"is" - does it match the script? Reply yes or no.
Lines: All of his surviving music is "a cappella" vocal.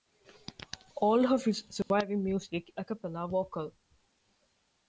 no